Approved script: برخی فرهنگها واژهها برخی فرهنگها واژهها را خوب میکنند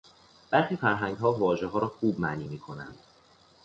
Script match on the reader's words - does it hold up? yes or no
no